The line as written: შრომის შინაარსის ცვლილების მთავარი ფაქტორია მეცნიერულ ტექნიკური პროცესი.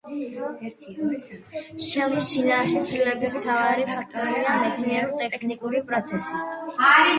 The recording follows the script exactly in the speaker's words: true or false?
true